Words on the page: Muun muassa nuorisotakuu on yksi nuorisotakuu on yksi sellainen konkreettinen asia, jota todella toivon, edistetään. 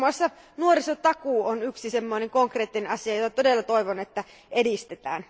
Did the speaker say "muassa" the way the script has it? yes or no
yes